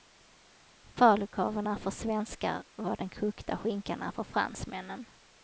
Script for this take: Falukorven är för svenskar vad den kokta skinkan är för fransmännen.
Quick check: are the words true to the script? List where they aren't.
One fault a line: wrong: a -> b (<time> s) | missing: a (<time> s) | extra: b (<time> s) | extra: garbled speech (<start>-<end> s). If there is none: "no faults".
no faults